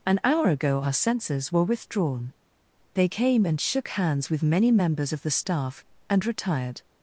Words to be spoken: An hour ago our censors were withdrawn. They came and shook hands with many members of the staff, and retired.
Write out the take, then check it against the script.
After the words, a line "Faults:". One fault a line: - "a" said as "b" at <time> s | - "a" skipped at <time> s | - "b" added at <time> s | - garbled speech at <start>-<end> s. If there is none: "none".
An hour ago our censors were withdrawn. They came and shook hands with many members of the staff, and retired.
Faults:
none